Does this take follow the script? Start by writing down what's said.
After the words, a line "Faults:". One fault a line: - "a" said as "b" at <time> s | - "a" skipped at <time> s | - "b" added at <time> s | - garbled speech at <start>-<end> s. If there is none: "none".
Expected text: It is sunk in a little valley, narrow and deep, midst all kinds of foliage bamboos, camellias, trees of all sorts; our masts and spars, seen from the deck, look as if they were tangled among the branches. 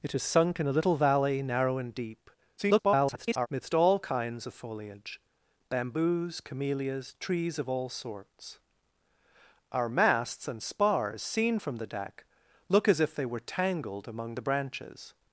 It is sunk in a little valley, narrow and deep, [garbled] midst all kinds of foliage bamboos, camellias, trees of all sorts; our masts and spars, seen from the deck, look as if they were tangled among the branches.
Faults:
- garbled speech at 2.6-3.5 s